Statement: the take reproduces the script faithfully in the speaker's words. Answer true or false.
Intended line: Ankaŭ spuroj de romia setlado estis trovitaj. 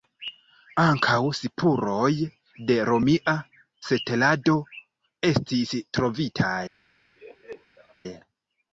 true